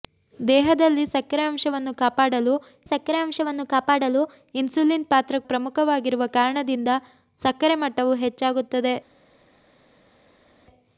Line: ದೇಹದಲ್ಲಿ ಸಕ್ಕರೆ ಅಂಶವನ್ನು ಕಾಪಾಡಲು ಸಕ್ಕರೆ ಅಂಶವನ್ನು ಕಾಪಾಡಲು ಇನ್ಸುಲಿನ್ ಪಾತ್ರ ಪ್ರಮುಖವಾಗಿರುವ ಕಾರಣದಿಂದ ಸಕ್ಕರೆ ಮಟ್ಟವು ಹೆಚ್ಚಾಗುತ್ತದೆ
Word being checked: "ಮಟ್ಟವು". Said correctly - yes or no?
yes